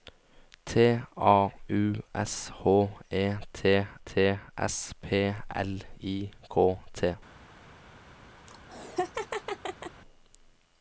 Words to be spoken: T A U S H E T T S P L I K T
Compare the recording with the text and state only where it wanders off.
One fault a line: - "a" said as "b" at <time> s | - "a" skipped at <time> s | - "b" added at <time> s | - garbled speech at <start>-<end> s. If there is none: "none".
none